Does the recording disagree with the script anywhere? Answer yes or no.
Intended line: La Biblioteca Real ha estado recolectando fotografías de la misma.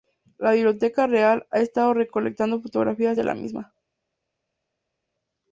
no